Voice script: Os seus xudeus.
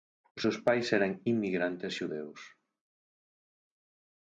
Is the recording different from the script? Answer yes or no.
yes